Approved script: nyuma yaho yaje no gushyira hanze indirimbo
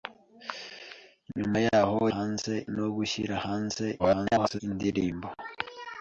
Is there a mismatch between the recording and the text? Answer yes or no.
yes